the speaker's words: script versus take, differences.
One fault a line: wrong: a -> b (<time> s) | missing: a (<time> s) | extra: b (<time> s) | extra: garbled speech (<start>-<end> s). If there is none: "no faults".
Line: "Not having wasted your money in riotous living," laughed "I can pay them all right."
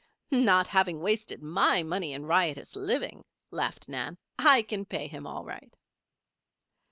wrong: your -> my (1.4 s)
extra: Nan (3.9 s)
wrong: them -> him (5.0 s)